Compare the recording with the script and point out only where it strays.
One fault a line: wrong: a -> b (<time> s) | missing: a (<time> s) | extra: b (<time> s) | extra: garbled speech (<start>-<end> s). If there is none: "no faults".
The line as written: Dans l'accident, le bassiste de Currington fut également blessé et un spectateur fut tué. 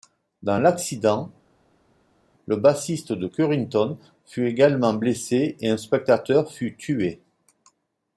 no faults